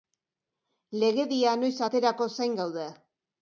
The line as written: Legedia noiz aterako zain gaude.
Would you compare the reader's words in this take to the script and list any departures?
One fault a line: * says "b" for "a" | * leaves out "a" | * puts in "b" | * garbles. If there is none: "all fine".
all fine